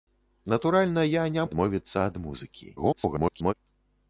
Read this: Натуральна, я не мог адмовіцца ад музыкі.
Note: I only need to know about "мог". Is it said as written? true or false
false